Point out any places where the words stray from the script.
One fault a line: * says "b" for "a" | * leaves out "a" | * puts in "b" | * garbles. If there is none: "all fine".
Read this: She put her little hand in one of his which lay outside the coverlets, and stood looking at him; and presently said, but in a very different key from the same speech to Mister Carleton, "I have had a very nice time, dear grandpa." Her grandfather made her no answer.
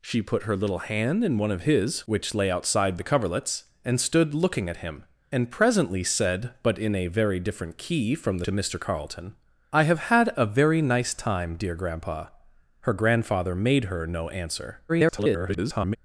* leaves out "same speech"
* garbles